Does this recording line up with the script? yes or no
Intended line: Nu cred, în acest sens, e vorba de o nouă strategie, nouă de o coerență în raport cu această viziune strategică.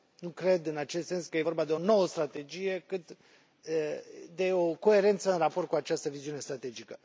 no